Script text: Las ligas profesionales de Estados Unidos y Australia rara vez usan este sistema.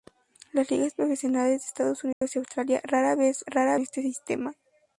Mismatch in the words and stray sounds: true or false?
true